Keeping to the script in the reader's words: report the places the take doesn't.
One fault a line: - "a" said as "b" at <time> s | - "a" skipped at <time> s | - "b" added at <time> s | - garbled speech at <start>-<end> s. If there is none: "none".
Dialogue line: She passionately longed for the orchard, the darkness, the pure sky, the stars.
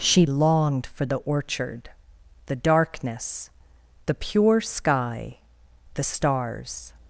- "passionately" skipped at 0.2 s